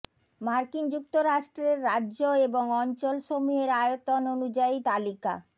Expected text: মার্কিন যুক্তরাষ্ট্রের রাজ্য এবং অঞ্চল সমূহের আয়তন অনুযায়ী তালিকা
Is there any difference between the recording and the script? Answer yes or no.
no